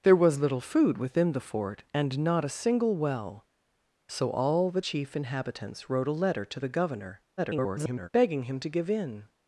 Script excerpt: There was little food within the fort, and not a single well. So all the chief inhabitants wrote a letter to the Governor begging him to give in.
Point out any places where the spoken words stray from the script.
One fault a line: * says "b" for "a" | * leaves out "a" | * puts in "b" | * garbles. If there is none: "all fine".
* garbles